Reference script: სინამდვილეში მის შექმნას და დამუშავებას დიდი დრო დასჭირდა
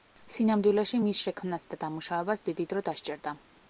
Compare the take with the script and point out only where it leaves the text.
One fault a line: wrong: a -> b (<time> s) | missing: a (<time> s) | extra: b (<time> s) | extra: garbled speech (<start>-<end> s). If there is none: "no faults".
no faults